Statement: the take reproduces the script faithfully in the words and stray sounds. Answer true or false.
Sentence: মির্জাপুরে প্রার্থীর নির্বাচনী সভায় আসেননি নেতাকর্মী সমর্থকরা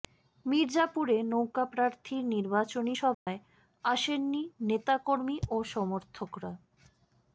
false